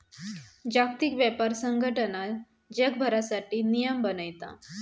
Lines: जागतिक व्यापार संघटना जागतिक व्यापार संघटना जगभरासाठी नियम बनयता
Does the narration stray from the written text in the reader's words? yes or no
yes